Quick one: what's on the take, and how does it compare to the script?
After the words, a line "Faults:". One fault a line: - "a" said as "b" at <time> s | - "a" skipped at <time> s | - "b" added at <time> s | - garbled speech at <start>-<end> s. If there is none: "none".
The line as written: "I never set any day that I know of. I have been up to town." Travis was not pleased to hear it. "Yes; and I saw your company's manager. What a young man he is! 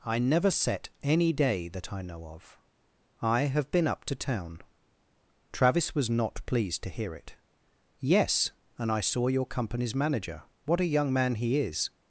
"I never set any day that I know of. I have been up to town." Travis was not pleased to hear it. "Yes; and I saw your company's manager. What a young man he is!
Faults:
none